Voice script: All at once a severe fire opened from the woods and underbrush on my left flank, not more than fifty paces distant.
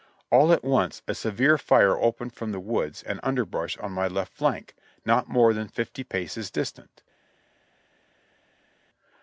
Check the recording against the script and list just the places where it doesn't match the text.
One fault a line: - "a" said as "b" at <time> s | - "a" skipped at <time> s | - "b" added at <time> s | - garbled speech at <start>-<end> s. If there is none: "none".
none